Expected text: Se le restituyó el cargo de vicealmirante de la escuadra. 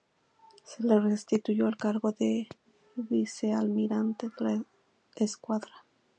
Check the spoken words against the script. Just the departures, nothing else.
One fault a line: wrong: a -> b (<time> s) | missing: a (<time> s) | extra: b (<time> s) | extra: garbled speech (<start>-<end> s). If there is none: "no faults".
no faults